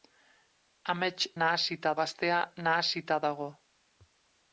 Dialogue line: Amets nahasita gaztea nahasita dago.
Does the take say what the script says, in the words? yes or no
yes